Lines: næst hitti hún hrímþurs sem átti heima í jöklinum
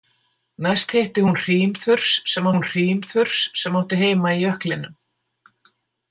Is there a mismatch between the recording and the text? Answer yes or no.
yes